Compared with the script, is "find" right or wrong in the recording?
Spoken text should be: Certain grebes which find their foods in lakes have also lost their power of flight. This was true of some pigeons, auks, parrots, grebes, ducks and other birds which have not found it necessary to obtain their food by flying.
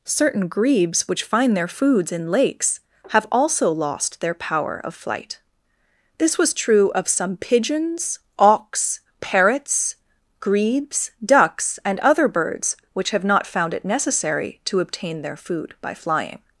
right